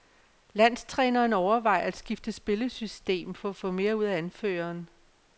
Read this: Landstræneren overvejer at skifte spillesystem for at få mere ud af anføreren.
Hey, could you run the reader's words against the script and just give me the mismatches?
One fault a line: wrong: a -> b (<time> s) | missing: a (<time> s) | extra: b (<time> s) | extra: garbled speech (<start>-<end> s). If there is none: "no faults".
no faults